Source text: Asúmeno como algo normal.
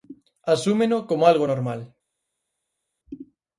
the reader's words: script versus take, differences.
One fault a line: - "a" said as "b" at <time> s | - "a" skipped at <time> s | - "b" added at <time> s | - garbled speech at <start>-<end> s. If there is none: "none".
none